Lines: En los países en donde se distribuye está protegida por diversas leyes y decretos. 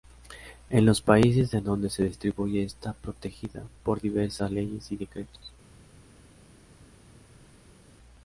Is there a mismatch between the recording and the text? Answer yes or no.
no